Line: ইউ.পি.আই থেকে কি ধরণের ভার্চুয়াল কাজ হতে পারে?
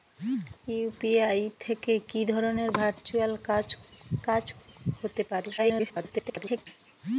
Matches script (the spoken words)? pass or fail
fail